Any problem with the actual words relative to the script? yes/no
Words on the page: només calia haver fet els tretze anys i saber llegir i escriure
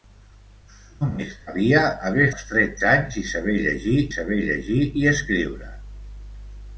yes